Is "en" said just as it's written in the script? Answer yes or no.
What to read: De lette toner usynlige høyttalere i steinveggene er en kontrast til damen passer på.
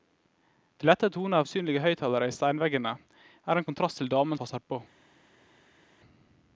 yes